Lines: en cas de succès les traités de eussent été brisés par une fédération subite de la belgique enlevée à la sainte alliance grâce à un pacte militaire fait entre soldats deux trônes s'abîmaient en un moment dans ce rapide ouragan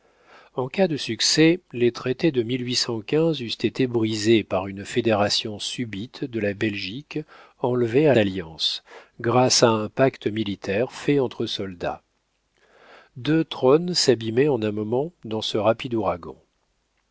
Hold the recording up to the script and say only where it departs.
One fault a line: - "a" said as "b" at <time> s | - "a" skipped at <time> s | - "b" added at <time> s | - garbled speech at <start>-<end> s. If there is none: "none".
- "la sainte" skipped at 8.2 s